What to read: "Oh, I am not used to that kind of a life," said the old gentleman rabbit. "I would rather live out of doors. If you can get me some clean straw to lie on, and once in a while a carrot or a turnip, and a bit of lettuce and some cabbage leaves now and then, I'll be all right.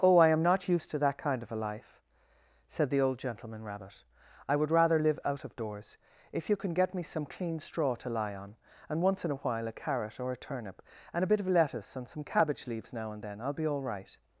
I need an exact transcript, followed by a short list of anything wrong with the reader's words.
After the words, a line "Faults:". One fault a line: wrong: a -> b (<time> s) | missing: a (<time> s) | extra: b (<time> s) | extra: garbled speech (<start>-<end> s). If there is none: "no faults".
"Oh, I am not used to that kind of a life," said the old gentleman rabbit. "I would rather live out of doors. If you can get me some clean straw to lie on, and once in a while a carrot or a turnip, and a bit of lettuce and some cabbage leaves now and then, I'll be all right.
Faults:
no faults